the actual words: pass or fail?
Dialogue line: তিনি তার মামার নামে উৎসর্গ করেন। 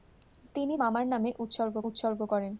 fail